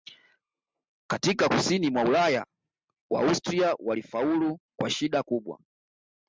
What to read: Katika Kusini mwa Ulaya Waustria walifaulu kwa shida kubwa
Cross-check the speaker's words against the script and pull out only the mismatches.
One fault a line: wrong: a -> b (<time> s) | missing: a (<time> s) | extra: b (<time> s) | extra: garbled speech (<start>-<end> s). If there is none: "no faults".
no faults